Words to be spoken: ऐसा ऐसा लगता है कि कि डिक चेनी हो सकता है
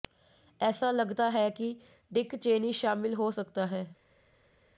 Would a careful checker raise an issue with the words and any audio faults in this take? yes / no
yes